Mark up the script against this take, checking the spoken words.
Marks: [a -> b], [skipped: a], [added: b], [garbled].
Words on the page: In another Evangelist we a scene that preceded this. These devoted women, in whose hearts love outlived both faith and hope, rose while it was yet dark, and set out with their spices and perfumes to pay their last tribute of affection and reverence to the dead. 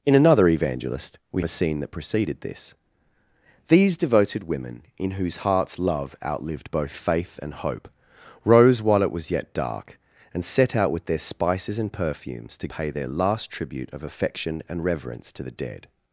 In another Evangelist we a scene that preceded this. These devoted women, in whose hearts love outlived both faith and hope, rose while it was yet dark, and set out with their spices and perfumes to pay their last tribute of affection and reverence to the dead.